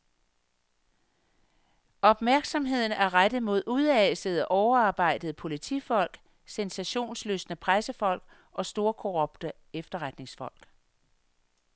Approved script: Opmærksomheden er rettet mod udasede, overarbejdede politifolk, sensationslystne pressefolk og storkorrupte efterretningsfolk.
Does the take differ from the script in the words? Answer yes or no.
no